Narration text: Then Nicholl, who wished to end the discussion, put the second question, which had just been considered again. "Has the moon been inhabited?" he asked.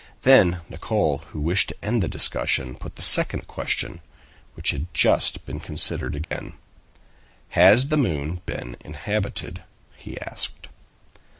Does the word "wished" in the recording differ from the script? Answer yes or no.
no